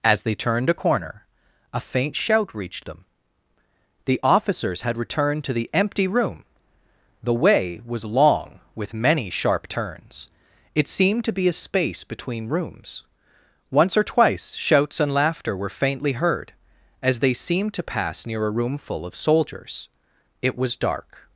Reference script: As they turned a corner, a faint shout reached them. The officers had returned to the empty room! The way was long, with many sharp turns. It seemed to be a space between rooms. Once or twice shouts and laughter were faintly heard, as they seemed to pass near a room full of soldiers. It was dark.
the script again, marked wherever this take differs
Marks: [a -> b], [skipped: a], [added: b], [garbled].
As they turned a corner, a faint shout reached them. The officers had returned to the empty room! The way was long, with many sharp turns. It seemed to be a space between rooms. Once or twice shouts and laughter were faintly heard, as they seemed to pass near a room full of soldiers. It was dark.